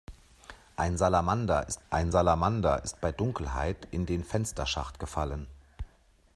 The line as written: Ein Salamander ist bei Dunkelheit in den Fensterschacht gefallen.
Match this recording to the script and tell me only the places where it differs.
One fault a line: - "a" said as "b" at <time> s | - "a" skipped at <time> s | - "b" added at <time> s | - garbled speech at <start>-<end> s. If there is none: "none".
- "ein Salamander ist" added at 1.9 s